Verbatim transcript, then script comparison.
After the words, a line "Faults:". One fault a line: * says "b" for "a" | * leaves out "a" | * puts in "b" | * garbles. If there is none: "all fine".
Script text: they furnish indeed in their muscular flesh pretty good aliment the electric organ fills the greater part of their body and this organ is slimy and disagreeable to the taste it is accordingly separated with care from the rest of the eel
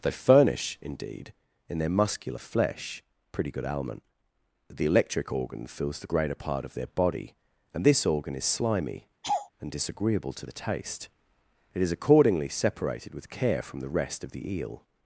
they furnish indeed in their muscular flesh pretty good aliment the electric organ fills the greater part of their body and this organ is slimy and disagreeable to the taste it is accordingly separated with care from the rest of the eel
Faults:
all fine